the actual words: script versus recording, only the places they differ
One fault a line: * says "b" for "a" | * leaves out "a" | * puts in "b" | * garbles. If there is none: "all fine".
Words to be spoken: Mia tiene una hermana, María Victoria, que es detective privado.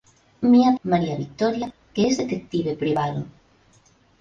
* leaves out "tiene una hermana"